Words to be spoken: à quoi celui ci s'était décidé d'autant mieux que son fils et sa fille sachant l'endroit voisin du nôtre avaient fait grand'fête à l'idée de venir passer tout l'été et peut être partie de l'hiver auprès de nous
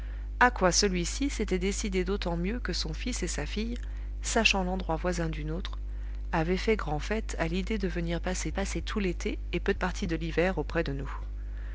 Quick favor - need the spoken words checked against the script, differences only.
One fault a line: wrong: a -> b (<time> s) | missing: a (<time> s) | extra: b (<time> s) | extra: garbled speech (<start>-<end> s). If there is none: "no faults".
extra: passer (8.5 s)
missing: être (9.7 s)